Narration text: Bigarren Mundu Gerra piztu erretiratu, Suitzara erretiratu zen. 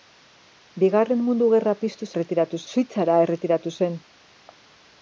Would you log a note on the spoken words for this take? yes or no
no